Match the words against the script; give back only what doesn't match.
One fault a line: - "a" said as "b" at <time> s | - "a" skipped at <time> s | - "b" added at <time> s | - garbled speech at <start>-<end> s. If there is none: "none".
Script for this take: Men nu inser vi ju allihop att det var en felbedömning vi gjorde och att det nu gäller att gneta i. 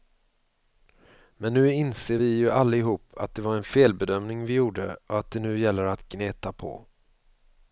- "i" said as "på" at 6.5 s